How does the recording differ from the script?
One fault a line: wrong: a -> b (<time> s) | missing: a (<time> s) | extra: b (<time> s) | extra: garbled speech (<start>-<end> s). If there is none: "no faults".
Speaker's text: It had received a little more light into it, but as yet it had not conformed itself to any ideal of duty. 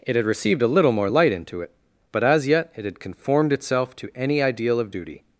missing: not (3.0 s)